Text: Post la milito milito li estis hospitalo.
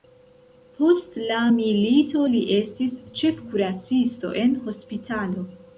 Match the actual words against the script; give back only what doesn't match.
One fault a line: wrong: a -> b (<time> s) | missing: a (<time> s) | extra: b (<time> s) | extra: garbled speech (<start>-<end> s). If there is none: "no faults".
missing: milito (2.2 s)
extra: ĉefkuracisto en (3.2 s)